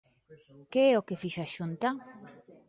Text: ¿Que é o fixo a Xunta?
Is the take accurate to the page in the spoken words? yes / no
no